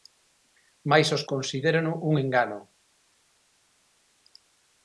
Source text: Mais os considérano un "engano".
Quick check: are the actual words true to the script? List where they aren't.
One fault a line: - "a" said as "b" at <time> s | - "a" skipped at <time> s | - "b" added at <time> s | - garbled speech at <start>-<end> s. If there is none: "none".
none